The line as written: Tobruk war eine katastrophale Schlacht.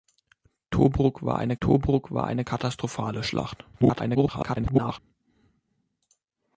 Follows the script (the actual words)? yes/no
no